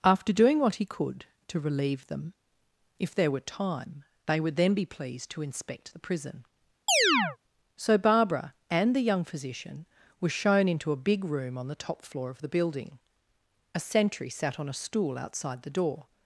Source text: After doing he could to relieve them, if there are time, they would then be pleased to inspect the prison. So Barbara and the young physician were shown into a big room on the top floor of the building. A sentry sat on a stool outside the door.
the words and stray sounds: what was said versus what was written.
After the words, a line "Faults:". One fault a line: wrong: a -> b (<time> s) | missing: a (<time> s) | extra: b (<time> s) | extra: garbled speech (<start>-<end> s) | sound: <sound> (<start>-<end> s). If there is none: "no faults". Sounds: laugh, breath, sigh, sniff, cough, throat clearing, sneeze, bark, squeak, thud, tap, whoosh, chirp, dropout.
After doing what he could to relieve them, if there were time, they would then be pleased to inspect the prison. So Barbara and the young physician were shown into a big room on the top floor of the building. A sentry sat on a stool outside the door.
Faults:
extra: what (0.6 s)
wrong: are -> were (3.3 s)
sound: chirp (6.9-7.4 s)